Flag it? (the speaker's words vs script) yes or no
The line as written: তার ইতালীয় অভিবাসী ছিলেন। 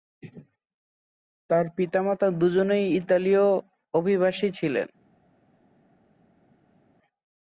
yes